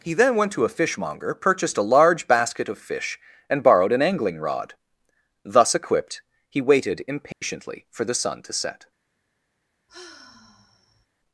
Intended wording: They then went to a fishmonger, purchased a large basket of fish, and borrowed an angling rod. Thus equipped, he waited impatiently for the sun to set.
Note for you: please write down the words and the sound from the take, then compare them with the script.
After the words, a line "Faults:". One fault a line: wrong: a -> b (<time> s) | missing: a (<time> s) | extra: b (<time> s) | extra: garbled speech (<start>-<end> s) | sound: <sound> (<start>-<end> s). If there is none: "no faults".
He then went to a fishmonger, purchased a large basket of fish, and borrowed an angling rod. Thus equipped, he waited impatiently for the sun to set.
Faults:
wrong: They -> He (0.0 s)
sound: dropout (7.3-7.4 s)
sound: sigh (9.9-11.1 s)